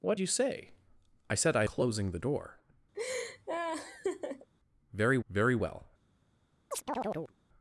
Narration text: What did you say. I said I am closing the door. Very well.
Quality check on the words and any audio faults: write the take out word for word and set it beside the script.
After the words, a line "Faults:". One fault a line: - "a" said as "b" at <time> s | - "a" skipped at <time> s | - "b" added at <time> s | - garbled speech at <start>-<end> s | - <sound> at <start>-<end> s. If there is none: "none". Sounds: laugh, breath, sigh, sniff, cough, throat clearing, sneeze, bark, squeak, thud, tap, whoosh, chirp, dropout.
What you say. I said I closing the door. Very very well.
Faults:
- "did" skipped at 0.2 s
- "am" skipped at 1.6 s
- laugh at 2.9-4.5 s
- "very" added at 5.3 s
- chirp at 6.7-7.3 s